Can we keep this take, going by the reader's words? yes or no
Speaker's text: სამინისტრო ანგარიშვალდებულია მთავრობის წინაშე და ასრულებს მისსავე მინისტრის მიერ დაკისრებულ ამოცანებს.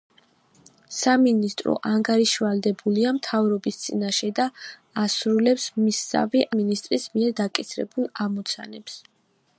yes